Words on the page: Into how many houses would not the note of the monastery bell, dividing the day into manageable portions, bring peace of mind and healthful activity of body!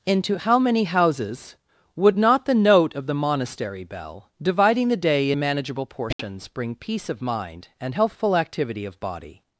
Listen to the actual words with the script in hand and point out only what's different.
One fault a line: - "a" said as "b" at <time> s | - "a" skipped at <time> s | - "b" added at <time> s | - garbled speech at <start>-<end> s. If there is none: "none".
- "into" skipped at 5.3 s